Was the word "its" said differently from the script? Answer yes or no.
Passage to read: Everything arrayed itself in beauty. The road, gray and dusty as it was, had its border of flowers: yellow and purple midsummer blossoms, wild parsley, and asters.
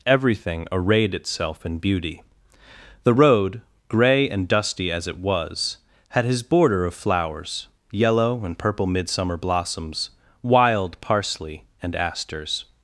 yes